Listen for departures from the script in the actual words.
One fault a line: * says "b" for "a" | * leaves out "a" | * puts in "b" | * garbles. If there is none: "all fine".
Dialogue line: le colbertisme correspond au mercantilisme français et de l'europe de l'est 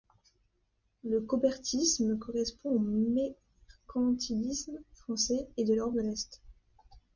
all fine